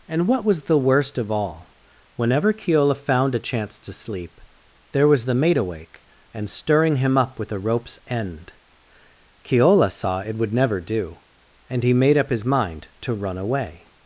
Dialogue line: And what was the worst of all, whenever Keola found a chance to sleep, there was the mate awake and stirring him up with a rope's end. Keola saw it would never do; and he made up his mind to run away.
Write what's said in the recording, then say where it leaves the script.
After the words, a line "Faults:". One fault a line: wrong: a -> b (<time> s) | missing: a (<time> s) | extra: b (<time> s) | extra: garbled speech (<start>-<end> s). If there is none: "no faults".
And what was the worst of all, whenever Keola found a chance to sleep, there was the mate awake and stirring him up with a rope's end. Keola saw it would never do; and he made up his mind to run away.
Faults:
no faults